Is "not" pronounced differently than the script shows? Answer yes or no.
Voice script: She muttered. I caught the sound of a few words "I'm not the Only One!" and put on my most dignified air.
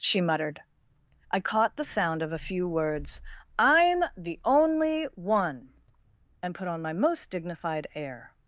yes